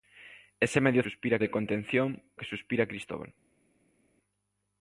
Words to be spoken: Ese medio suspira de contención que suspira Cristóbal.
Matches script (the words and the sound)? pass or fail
pass